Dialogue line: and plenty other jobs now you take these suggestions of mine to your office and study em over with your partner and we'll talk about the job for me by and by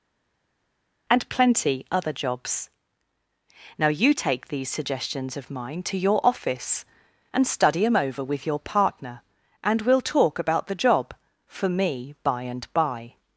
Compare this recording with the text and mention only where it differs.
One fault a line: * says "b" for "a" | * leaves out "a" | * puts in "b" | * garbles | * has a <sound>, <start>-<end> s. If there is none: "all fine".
all fine